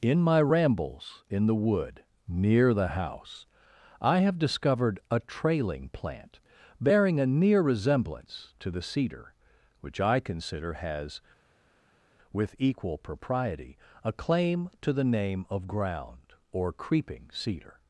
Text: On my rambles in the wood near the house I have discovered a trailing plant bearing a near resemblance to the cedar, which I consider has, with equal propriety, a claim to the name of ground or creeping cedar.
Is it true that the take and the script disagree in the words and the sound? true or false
true